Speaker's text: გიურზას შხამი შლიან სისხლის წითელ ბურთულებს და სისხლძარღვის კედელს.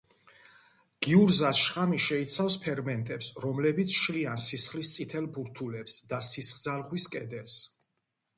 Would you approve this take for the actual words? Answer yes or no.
no